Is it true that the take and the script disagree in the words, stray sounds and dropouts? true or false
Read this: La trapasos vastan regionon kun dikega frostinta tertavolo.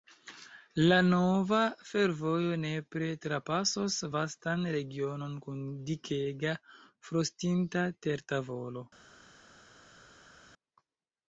true